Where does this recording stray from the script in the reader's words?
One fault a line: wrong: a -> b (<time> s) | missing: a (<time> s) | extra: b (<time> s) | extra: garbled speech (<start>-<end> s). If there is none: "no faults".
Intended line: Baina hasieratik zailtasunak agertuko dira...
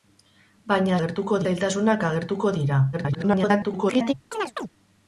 wrong: hasieratik -> agertuko (1.0 s)
extra: garbled speech (2.9-4.1 s)